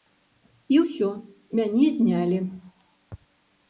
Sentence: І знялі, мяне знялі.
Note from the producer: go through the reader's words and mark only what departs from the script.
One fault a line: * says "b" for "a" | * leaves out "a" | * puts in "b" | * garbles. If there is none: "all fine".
* says "ўсё" for "знялі"